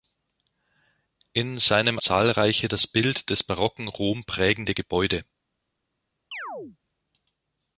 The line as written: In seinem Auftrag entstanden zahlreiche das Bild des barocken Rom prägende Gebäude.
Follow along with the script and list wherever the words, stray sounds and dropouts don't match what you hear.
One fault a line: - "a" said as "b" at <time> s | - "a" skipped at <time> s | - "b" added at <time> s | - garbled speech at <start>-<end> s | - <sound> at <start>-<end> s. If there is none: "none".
- "Auftrag entstanden" skipped at 2.0 s
- chirp at 6.3-6.8 s